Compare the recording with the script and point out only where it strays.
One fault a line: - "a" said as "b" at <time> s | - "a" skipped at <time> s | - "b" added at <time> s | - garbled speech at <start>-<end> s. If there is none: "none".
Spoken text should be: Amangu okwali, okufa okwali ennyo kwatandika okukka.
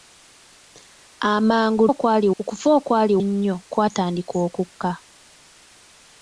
none